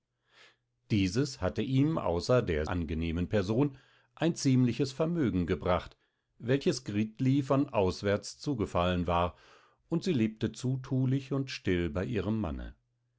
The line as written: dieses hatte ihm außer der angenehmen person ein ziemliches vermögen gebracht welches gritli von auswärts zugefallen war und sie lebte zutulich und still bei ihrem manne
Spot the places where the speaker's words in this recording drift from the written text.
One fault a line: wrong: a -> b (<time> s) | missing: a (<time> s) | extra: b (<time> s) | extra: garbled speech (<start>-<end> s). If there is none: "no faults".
no faults